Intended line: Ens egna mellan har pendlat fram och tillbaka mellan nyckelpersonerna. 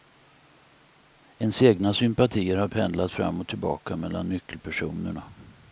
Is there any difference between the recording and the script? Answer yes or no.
yes